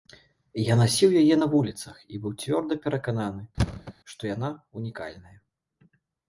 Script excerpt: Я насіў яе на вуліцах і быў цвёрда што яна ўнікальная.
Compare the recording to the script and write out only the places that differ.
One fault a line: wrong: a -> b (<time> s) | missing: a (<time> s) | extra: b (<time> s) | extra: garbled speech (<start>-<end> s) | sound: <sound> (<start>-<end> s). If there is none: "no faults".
extra: перакананы (2.9 s)
sound: thud (3.6-3.9 s)